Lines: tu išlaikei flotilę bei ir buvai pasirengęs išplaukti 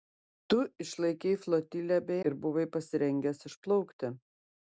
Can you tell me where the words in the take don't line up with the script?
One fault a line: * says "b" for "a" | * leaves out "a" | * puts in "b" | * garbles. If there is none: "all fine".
all fine